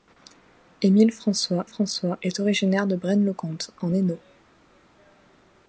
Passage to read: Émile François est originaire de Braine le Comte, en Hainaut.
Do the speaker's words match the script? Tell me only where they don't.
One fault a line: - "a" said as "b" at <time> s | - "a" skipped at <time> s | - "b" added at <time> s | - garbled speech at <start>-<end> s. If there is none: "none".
- "François" added at 1.6 s